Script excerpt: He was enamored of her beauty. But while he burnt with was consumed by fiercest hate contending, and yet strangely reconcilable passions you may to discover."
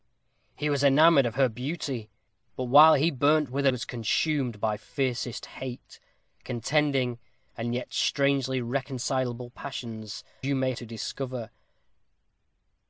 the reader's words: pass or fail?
pass